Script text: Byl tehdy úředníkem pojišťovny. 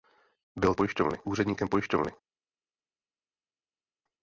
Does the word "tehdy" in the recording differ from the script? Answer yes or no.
yes